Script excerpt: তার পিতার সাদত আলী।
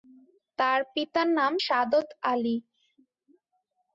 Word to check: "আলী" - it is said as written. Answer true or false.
true